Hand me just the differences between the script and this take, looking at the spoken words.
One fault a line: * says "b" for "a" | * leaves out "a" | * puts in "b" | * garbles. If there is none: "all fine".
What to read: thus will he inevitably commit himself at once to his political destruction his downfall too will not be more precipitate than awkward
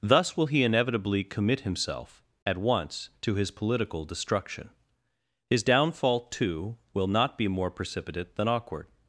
all fine